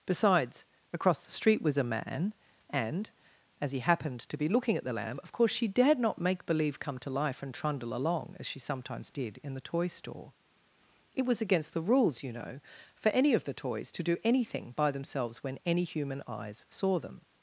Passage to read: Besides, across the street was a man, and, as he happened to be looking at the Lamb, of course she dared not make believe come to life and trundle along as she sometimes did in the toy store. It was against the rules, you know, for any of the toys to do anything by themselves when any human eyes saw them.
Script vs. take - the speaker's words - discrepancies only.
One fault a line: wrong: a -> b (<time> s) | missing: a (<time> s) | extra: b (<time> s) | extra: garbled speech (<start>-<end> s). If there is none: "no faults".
no faults